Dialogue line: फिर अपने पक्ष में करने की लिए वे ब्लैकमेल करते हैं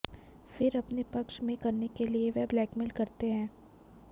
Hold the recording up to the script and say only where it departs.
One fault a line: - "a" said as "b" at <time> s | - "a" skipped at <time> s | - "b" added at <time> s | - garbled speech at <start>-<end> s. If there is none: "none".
- "की" said as "के" at 1.9 s